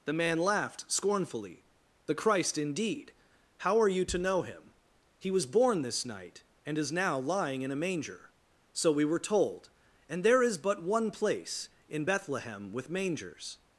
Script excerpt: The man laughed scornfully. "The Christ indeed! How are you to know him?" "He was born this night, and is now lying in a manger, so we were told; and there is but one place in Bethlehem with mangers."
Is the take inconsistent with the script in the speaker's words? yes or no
no